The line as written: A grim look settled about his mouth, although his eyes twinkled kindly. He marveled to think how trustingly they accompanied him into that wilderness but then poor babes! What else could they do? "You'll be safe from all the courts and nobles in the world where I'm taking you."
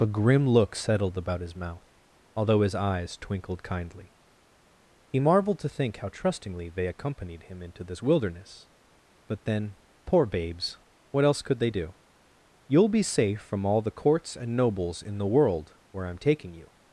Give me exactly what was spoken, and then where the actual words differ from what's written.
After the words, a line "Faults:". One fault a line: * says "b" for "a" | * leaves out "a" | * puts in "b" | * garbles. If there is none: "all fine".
A grim look settled about his mouth, although his eyes twinkled kindly. He marveled to think how trustingly they accompanied him into this wilderness but then poor babes! What else could they do? "You'll be safe from all the courts and nobles in the world where I'm taking you."
Faults:
* says "this" for "that"